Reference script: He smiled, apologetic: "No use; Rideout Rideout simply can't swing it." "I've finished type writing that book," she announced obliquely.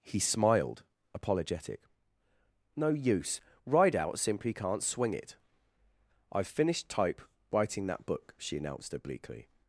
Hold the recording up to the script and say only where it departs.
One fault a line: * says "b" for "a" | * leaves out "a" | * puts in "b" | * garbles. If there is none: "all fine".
* leaves out "Rideout"